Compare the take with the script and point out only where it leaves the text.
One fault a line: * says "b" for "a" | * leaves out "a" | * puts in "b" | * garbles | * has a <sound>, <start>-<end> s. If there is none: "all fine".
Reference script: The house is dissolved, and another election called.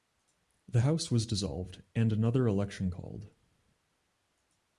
* says "was" for "is"